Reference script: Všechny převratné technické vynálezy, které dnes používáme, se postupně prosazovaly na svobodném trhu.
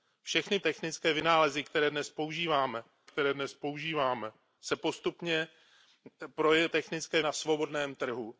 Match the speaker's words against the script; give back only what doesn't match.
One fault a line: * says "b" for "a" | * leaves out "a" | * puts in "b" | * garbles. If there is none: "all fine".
* leaves out "převratné"
* puts in "které dnes používáme"
* says "technické" for "prosazovaly"